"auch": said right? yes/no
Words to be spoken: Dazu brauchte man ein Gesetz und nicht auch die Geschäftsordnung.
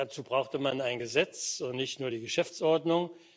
no